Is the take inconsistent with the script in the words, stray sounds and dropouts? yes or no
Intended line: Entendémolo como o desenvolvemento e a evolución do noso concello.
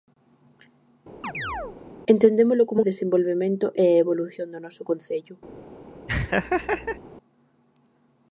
yes